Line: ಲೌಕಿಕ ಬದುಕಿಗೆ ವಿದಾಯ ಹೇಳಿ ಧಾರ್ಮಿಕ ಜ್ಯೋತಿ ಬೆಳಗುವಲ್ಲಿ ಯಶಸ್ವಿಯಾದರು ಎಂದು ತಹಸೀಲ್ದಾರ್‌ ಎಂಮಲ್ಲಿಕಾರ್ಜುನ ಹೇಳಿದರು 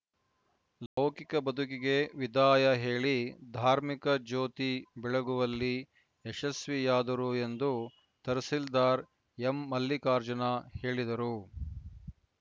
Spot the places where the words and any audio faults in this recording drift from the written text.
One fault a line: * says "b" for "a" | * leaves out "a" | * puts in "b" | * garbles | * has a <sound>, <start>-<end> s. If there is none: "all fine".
* has a dropout, 0.9-1.0 s